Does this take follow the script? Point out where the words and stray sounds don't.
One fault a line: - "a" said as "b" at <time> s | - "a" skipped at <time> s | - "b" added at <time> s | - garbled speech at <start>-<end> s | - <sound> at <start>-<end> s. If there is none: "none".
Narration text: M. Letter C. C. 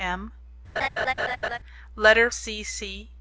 - laugh at 0.8-1.6 s